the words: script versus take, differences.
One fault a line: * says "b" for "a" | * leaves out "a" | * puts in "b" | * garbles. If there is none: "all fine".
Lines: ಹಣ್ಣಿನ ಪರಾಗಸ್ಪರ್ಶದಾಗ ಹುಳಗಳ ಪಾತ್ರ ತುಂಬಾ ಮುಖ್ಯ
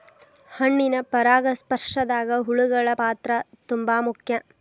all fine